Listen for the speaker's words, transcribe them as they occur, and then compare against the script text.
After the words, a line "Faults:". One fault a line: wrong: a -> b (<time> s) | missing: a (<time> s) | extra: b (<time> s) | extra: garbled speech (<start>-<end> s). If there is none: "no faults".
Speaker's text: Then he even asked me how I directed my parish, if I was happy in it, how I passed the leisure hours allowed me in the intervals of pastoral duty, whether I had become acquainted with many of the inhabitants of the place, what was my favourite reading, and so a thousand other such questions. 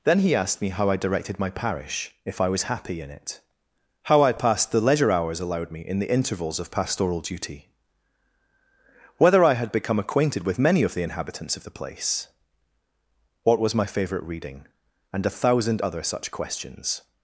Then he asked me how I directed my parish, if I was happy in it, how I passed the leisure hours allowed me in the intervals of pastoral duty, whether I had become acquainted with many of the inhabitants of the place, what was my favourite reading, and a thousand other such questions.
Faults:
missing: even (0.3 s)
missing: so (15.3 s)